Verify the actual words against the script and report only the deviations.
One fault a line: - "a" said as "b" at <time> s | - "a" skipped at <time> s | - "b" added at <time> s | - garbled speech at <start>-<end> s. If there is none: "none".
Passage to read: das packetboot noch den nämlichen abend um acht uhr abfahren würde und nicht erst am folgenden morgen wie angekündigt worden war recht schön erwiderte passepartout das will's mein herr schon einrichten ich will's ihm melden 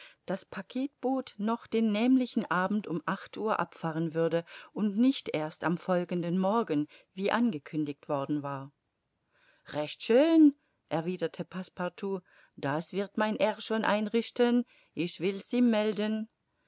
- "will's" said as "wird" at 12.9 s